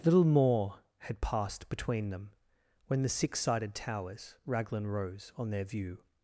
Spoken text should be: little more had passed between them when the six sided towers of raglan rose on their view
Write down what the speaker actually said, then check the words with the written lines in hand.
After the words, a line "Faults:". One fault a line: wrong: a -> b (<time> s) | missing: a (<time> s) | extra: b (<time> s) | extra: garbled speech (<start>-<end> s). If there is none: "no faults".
little more had passed between them when the six sided towers raglan rose on their view
Faults:
missing: of (4.4 s)